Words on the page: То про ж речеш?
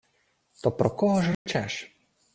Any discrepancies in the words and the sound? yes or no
yes